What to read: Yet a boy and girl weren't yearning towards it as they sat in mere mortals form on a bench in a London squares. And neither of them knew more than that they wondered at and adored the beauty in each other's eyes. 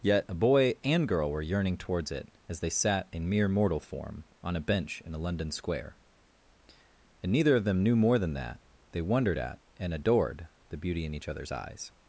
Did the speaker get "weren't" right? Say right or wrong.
wrong